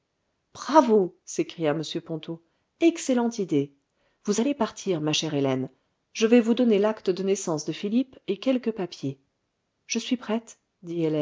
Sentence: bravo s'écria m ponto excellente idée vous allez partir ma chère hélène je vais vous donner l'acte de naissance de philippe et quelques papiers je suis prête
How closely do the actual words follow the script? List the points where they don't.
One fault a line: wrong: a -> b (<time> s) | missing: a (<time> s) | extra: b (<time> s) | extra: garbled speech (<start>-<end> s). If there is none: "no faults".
no faults